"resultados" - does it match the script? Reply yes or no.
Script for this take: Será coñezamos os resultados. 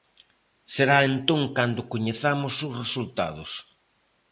yes